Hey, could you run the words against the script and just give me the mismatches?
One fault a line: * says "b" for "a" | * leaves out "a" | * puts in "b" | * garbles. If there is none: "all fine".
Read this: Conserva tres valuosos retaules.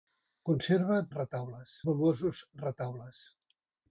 * says "retaules" for "tres"